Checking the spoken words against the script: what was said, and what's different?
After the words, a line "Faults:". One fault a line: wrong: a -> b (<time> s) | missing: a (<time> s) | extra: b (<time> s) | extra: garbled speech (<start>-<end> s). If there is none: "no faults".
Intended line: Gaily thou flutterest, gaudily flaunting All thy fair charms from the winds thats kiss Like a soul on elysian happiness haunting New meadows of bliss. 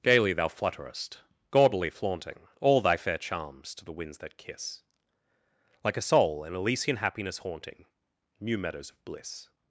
Gaily thou flutterest, gaudily flaunting All thy fair charms to the winds that kiss Like a soul in elysian happiness haunting New meadows of bliss.
Faults:
wrong: from -> to (3.8 s)
wrong: thats -> that (4.2 s)
wrong: on -> in (6.4 s)